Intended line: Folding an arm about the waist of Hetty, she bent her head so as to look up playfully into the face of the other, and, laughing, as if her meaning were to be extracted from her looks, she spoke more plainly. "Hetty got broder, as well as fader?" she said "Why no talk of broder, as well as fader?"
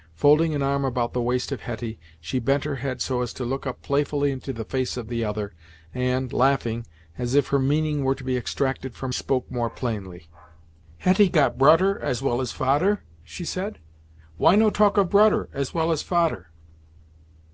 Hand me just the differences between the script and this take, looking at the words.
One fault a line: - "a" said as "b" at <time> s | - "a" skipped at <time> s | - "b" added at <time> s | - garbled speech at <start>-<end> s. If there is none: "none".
- "her looks she" skipped at 9.1 s